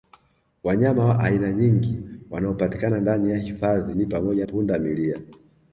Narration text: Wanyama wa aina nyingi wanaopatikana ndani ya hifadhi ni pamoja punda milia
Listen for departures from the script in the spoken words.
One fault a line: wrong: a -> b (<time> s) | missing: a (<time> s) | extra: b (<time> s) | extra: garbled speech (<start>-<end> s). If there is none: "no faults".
no faults